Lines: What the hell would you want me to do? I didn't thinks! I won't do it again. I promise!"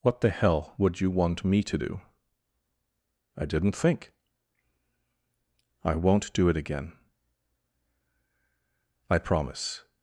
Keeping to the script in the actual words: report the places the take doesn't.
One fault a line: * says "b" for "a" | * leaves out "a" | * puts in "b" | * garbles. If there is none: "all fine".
* says "think" for "thinks"